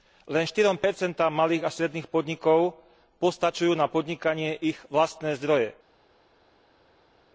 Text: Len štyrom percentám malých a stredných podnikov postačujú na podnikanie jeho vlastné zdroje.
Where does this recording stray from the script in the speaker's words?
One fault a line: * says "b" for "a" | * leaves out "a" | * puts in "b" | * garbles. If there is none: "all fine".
* says "ich" for "jeho"